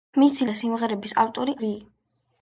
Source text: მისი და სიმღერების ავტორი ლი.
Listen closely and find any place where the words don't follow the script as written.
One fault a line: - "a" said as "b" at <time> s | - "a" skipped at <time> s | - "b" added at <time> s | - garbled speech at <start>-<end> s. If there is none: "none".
none